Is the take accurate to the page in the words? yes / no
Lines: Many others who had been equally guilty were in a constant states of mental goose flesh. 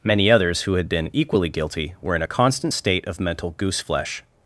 no